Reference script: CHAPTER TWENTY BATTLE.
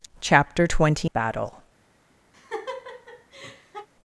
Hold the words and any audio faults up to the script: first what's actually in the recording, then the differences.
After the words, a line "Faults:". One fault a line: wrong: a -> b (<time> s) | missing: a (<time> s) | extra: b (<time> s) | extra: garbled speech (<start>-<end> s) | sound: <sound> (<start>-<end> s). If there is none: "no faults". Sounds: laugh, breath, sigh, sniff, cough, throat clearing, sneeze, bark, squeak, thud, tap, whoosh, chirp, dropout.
CHAPTER TWENTY BATTLE.
Faults:
sound: laugh (2.3-3.9 s)